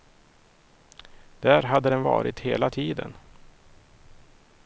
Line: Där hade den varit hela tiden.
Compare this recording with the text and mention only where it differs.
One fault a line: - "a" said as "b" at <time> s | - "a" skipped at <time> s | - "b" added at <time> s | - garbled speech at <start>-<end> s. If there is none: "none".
none